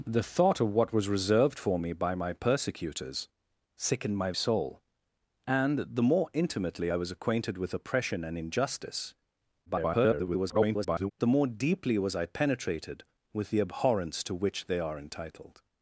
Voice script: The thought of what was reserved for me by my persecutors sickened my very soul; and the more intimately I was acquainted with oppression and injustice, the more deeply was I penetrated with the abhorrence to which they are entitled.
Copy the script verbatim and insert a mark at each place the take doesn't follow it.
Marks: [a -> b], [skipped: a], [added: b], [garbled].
The thought of what was reserved for me by my persecutors sickened my [skipped: very] soul; and the more intimately I was acquainted with oppression and injustice, [garbled] the more deeply was I penetrated with the abhorrence to which they are entitled.